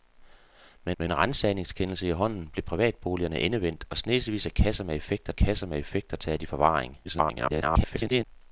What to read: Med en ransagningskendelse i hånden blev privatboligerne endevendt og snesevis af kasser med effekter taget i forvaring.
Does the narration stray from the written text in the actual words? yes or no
yes